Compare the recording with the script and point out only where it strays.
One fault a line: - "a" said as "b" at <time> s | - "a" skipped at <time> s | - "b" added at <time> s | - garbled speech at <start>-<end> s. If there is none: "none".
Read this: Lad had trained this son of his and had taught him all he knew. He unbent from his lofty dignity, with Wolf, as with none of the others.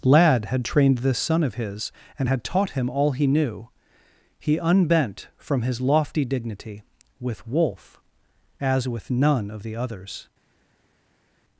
none